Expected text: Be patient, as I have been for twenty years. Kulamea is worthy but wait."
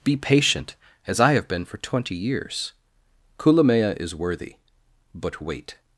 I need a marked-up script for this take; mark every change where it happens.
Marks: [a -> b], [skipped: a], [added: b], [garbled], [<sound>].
Be patient, as I have been for twenty years. Kulamea is worthy but wait."